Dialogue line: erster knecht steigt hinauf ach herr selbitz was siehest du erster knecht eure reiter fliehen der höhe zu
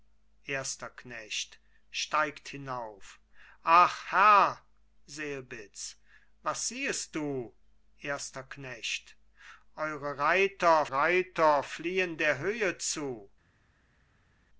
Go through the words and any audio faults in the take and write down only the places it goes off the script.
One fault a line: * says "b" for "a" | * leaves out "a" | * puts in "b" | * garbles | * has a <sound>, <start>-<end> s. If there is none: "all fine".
* puts in "reiter"